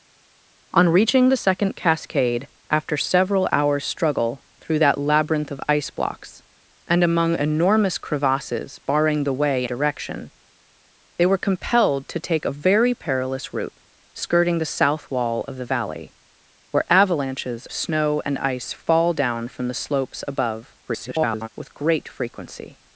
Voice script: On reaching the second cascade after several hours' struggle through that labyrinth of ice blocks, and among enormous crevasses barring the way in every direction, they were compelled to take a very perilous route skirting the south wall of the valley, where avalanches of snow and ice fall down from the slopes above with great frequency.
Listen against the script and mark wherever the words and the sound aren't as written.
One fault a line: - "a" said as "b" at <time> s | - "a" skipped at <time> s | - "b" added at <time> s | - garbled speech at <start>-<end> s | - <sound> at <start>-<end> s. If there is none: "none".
- "in every" skipped at 9.6 s
- "of" skipped at 17.7 s
- garbled speech at 20.9-21.5 s